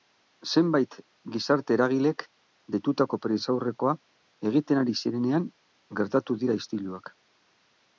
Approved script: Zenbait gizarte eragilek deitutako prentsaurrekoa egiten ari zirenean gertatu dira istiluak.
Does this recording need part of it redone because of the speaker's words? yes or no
no